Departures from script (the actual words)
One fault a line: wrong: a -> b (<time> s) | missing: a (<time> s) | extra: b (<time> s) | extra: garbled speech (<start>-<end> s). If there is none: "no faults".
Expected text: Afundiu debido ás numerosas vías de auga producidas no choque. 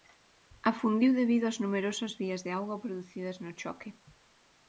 no faults